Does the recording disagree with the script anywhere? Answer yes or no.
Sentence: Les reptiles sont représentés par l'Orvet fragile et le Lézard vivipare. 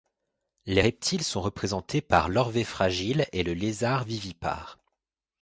no